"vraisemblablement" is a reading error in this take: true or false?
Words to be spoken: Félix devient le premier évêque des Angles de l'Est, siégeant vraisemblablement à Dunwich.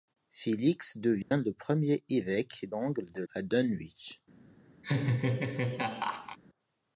true